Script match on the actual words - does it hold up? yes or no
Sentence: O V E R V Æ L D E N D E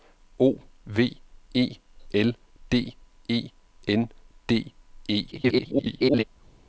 no